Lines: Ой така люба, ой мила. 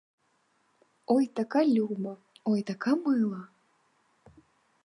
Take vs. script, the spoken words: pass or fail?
fail